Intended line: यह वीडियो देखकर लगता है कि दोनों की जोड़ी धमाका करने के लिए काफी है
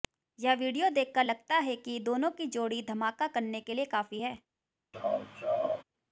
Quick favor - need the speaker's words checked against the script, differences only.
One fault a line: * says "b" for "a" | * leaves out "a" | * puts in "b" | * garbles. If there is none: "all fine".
all fine